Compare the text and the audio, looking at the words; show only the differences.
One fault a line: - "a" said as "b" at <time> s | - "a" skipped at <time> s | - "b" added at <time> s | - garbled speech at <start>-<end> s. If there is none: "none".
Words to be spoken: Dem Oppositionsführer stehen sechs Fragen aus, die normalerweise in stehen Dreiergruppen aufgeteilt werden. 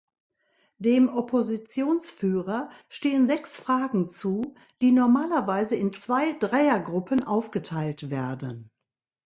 - "aus" said as "zu" at 4.1 s
- "stehen" said as "zwei" at 5.9 s